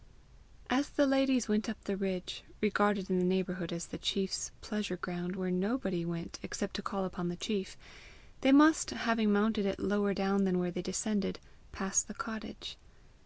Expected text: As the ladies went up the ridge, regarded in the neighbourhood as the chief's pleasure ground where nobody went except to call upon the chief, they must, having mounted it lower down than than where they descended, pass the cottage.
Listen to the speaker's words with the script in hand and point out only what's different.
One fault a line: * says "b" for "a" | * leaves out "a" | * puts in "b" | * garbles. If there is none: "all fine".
* leaves out "than"